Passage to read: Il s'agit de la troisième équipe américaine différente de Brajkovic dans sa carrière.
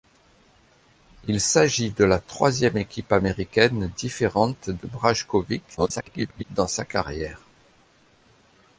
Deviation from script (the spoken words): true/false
true